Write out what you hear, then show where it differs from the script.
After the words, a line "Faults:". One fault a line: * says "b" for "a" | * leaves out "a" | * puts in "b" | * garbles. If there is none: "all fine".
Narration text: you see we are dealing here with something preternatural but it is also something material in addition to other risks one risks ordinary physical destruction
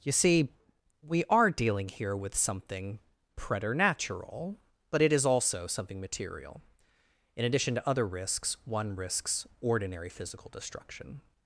you see we are dealing here with something preternatural but it is also something material in addition to other risks one risks ordinary physical destruction
Faults:
all fine